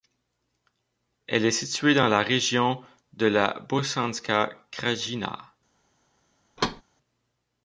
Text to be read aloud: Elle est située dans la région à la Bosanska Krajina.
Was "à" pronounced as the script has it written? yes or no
no